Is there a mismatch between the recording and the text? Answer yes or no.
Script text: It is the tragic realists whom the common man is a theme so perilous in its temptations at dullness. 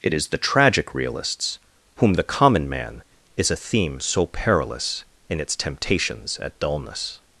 no